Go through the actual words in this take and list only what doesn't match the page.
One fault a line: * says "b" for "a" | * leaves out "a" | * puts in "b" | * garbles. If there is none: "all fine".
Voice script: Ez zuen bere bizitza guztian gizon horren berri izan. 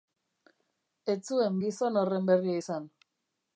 * leaves out "bere bizitza guztian"